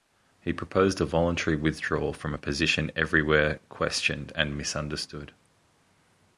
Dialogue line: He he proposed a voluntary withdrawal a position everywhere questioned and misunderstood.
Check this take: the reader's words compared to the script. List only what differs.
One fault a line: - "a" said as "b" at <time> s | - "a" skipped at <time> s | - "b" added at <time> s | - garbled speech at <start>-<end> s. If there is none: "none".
- "he" skipped at 0.5 s
- "from" added at 2.1 s